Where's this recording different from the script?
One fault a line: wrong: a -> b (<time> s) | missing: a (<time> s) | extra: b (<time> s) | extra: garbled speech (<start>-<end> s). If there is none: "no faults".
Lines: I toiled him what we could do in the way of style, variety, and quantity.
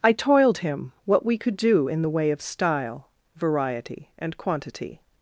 no faults